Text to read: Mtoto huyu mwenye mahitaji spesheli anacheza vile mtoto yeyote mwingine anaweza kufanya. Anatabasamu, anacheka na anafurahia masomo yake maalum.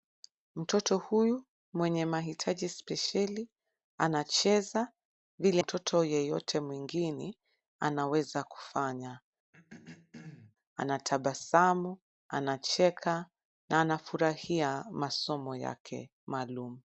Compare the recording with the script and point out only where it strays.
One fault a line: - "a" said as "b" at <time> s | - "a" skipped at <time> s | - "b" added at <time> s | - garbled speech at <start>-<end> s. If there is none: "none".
none